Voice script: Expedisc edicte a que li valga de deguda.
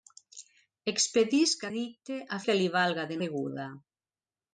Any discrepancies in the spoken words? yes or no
no